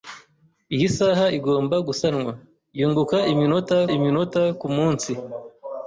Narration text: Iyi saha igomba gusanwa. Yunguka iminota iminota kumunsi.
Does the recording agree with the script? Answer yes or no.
yes